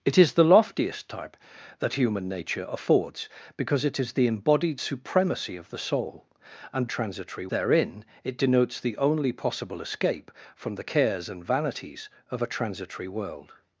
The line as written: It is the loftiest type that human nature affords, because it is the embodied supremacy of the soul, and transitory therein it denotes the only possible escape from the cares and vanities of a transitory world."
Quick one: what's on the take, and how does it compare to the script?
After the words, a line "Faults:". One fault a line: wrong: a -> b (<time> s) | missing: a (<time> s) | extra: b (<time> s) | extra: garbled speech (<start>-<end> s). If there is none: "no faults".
It is the loftiest type that human nature affords, because it is the embodied supremacy of the soul, and transitory therein it denotes the only possible escape from the cares and vanities of a transitory world."
Faults:
no faults